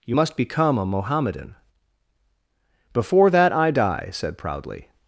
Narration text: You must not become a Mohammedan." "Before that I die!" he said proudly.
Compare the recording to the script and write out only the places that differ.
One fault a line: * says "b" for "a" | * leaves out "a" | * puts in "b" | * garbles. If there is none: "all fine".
* leaves out "not"
* leaves out "he"